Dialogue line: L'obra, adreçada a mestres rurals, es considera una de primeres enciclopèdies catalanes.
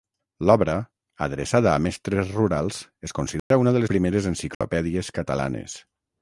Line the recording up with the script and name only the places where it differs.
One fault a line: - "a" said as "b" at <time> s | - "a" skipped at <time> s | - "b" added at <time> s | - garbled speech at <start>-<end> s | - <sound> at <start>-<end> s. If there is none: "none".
- dropout at 3.4-3.5 s
- dropout at 4.5-4.6 s